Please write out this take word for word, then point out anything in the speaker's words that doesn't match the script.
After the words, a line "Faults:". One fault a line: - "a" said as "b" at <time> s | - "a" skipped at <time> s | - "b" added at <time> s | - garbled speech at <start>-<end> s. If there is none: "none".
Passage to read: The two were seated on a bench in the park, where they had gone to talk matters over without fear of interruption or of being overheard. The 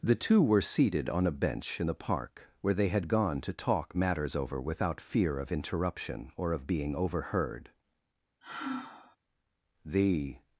The two were seated on a bench in the park, where they had gone to talk matters over without fear of interruption or of being overheard. The
Faults:
none